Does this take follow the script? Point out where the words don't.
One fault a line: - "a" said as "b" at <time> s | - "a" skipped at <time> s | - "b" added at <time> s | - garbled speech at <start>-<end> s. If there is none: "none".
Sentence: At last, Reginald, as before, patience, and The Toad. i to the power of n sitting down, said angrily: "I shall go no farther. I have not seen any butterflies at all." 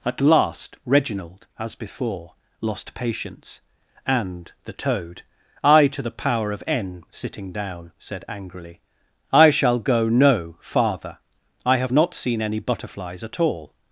- "lost" added at 2.6 s